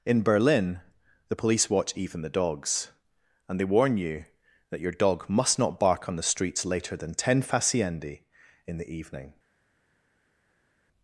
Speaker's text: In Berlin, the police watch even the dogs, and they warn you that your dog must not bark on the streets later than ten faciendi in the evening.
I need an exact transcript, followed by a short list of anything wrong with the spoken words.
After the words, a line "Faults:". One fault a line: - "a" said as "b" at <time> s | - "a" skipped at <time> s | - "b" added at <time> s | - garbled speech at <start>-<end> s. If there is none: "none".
In Berlin, the police watch even the dogs, and they warn you that your dog must not bark on the streets later than ten faciendi in the evening.
Faults:
none